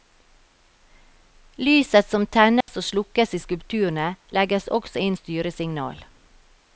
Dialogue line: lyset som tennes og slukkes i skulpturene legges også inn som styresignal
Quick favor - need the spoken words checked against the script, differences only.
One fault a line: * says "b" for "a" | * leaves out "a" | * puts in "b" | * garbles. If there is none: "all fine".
* leaves out "som"